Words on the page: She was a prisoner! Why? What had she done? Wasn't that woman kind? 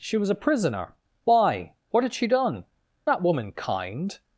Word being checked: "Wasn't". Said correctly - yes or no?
no